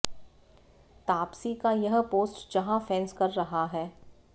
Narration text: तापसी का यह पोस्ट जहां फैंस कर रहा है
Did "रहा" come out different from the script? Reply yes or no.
no